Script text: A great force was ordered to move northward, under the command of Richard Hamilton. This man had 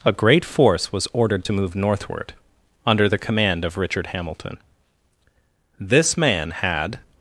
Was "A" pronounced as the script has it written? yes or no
yes